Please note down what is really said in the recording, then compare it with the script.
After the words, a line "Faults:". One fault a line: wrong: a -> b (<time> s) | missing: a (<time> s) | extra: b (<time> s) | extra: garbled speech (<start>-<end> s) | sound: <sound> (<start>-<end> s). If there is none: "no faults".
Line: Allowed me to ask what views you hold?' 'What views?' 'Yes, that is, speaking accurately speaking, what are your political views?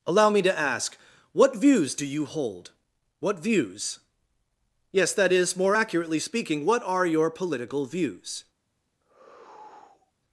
Allow me to ask what views do you hold?' 'What views?' 'Yes, that is, more accurately speaking, what are your political views?
Faults:
wrong: Allowed -> Allow (0.1 s)
extra: do (1.9 s)
wrong: speaking -> more (5.5 s)
sound: sigh (9.0-10.1 s)